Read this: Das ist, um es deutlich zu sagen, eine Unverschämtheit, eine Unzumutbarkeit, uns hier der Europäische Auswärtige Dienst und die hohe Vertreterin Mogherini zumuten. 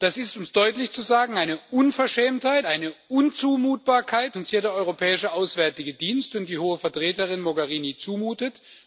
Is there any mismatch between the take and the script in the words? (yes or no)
no